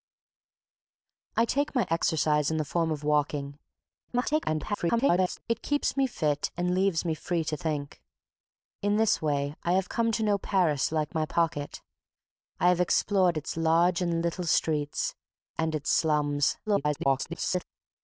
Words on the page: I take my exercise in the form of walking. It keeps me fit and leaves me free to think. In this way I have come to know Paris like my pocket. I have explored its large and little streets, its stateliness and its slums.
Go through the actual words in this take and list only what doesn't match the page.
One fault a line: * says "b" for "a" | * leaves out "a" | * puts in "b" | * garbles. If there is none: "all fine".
* garbles
* leaves out "its stateliness"
* garbles